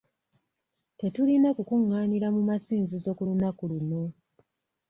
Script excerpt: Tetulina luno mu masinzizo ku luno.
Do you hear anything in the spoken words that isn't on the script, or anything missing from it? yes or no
yes